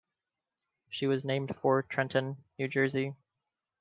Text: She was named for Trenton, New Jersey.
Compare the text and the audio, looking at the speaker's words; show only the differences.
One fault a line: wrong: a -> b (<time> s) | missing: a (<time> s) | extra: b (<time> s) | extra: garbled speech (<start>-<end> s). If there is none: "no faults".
no faults